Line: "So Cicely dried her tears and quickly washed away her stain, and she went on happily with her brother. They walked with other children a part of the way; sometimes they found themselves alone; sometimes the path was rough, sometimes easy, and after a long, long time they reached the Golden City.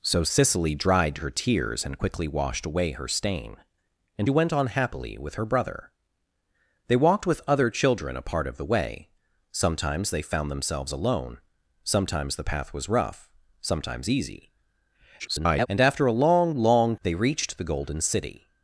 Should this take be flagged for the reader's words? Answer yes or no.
yes